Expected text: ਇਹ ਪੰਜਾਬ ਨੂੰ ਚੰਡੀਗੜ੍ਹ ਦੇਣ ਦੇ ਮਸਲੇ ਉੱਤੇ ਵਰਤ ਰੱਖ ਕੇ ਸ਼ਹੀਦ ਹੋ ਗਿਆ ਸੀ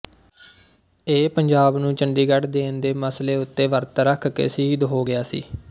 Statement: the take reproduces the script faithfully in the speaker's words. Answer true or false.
true